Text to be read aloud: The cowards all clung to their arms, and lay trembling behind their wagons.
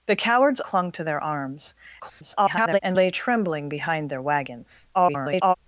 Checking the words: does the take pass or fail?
fail